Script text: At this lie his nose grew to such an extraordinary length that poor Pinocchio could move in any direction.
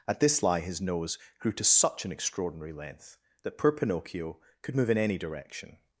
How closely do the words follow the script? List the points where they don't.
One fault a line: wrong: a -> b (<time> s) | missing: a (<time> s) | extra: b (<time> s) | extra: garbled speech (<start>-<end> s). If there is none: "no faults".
no faults